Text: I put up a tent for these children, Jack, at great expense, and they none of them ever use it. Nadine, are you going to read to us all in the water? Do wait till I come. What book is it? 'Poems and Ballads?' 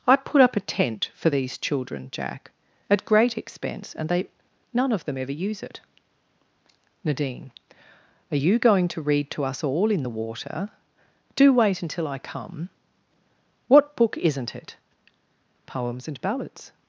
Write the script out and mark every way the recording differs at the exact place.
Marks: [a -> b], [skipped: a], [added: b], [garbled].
I put up a tent for these children, Jack, at great expense, and they none of them ever use it. Nadine, are you going to read to us all in the water? Do wait [till -> until] I come. What book [is -> isn't] it? 'Poems and Ballads?'